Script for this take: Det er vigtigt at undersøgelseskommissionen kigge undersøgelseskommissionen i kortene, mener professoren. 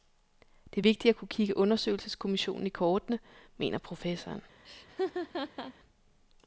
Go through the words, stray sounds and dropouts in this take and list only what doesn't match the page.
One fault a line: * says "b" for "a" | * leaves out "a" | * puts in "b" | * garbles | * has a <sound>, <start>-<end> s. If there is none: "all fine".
* says "kunne" for "undersøgelseskommissionen"
* has a laugh, 4.6-5.7 s